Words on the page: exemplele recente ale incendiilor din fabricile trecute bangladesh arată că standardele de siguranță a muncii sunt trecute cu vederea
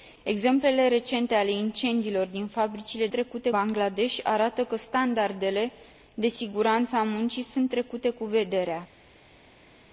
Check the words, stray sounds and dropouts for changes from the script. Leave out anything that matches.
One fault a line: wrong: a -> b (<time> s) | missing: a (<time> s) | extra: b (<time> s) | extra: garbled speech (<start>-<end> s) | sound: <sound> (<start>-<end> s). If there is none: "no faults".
no faults